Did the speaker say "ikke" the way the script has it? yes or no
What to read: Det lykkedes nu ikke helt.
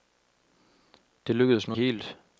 no